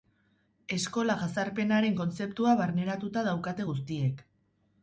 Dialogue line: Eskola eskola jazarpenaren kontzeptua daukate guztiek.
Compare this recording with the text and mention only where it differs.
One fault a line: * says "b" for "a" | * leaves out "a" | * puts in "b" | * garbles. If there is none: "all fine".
* leaves out "eskola"
* puts in "barneratuta"